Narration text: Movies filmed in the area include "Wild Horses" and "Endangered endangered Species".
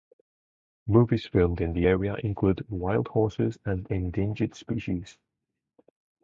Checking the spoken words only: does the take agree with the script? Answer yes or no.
no